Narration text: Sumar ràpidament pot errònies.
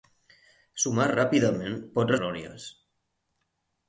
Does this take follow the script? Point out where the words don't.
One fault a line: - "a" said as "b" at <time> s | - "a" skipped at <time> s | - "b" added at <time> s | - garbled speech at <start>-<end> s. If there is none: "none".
none